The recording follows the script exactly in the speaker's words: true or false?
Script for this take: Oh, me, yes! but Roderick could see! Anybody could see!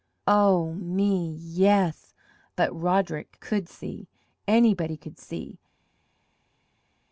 true